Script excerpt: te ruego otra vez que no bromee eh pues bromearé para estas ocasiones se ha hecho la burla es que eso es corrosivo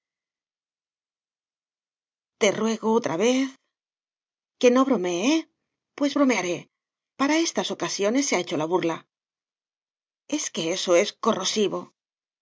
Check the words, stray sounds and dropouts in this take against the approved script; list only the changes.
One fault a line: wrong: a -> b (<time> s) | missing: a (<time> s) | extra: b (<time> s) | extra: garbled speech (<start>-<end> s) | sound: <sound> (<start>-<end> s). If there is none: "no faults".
no faults